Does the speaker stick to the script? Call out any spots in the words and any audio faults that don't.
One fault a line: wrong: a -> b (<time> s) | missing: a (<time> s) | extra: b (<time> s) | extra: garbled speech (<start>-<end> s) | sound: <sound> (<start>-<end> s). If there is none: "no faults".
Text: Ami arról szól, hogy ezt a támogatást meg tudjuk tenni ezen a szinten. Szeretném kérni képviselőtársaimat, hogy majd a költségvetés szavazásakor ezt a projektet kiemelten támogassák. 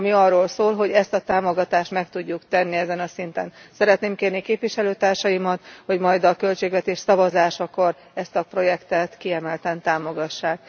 no faults